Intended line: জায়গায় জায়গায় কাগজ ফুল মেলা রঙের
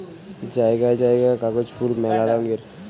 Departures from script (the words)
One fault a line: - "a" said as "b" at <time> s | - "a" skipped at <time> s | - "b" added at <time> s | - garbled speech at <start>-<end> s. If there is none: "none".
none